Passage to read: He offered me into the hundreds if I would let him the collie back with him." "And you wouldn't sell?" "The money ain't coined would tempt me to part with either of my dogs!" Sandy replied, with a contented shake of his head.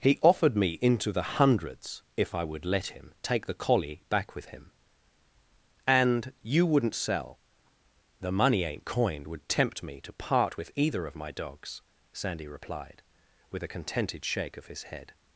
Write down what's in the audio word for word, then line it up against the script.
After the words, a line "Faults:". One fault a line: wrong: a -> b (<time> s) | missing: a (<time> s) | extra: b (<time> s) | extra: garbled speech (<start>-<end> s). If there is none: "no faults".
He offered me into the hundreds if I would let him take the collie back with him." "And you wouldn't sell?" "The money ain't coined would tempt me to part with either of my dogs!" Sandy replied, with a contented shake of his head.
Faults:
extra: take (3.2 s)